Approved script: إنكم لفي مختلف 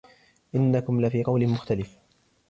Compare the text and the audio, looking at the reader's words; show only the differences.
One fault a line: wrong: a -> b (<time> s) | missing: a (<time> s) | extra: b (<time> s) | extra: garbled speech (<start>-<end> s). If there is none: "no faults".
extra: قول (1.2 s)